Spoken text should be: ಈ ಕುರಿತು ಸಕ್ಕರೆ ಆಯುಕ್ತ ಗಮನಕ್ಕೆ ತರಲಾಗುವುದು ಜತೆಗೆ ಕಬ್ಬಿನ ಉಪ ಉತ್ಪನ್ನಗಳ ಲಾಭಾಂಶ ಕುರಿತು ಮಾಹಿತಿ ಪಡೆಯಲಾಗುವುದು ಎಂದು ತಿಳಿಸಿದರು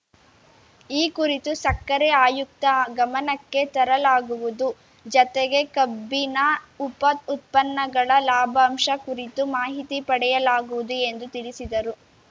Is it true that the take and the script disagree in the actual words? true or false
false